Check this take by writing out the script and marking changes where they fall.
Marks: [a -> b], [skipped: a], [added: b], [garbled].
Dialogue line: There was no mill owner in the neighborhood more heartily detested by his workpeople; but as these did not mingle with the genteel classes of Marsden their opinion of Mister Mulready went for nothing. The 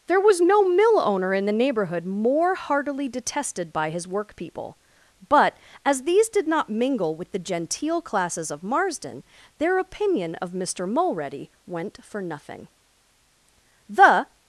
There was no mill owner in the neighborhood more heartily detested by his workpeople; but as these did not mingle with the genteel classes of Marsden their opinion of Mister Mulready went for nothing. The